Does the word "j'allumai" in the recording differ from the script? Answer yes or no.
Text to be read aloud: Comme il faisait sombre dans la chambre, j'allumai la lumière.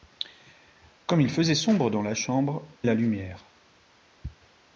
yes